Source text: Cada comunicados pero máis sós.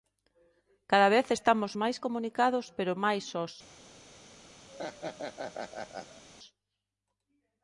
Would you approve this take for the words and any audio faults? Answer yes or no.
no